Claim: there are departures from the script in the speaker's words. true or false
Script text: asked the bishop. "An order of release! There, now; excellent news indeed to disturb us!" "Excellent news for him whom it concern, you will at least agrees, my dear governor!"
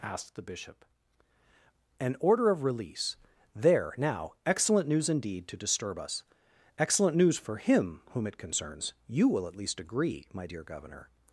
true